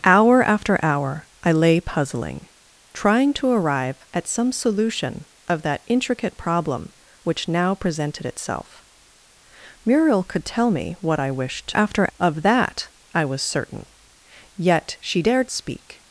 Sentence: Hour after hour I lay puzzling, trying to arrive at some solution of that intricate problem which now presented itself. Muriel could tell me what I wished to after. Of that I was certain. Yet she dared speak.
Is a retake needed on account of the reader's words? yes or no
no